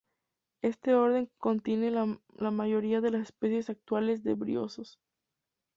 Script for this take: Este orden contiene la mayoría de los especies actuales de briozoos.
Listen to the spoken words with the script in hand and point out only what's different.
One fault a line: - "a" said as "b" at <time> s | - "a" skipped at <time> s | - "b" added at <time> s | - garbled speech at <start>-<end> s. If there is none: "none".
- "los" said as "las" at 3.1 s